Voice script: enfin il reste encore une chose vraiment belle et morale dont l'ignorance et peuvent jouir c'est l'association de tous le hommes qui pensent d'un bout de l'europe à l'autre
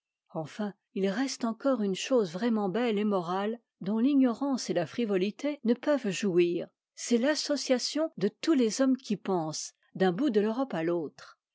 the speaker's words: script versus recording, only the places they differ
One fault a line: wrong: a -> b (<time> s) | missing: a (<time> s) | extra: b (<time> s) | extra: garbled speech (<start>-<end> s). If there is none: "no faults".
extra: la frivolité ne (4.7 s)
wrong: le -> les (8.5 s)